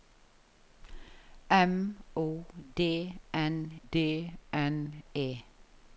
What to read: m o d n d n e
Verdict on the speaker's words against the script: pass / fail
pass